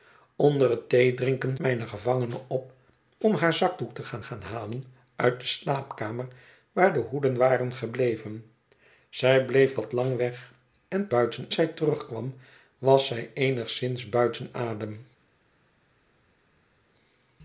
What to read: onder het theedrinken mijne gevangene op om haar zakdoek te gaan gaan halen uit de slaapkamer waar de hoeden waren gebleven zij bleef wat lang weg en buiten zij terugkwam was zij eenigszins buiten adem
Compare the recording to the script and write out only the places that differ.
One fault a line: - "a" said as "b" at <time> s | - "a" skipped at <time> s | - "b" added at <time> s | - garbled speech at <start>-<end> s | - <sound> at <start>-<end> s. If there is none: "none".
none